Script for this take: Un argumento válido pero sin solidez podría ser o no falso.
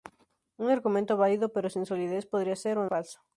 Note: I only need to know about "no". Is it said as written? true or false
false